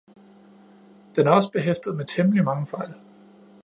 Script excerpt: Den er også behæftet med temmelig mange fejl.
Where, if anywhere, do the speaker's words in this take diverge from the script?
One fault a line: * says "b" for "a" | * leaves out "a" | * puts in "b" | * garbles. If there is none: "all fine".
all fine